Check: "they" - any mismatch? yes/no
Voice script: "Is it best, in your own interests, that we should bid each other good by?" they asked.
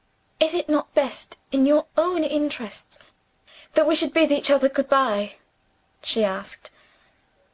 yes